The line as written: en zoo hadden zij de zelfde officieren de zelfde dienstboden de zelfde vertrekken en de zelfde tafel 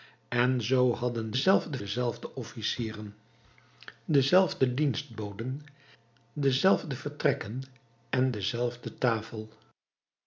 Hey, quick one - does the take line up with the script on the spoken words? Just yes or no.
no